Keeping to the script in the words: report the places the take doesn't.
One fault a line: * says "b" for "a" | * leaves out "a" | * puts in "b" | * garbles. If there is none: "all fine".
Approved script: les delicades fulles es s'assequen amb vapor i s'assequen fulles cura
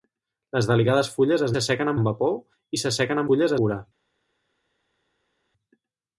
all fine